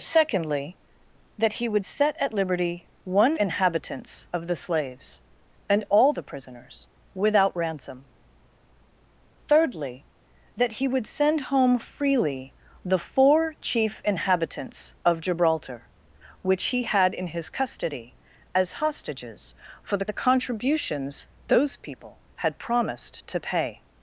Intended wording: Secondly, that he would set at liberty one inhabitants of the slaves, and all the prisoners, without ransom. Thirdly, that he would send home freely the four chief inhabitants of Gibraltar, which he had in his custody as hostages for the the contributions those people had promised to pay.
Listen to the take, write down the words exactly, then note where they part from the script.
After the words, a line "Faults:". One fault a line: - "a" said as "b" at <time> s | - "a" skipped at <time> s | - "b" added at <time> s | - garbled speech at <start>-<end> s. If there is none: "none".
Secondly, that he would set at liberty one inhabitants of the slaves, and all the prisoners, without ransom. Thirdly, that he would send home freely the four chief inhabitants of Gibraltar, which he had in his custody as hostages for the the contributions those people had promised to pay.
Faults:
none